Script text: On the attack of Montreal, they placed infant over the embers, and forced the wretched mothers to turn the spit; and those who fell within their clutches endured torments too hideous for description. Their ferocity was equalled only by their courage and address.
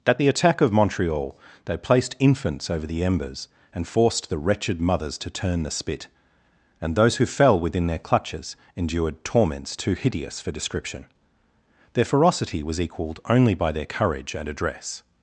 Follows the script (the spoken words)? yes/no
no